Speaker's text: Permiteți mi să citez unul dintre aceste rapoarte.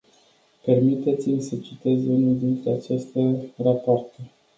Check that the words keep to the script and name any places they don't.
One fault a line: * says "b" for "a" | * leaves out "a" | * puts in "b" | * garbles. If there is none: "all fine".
all fine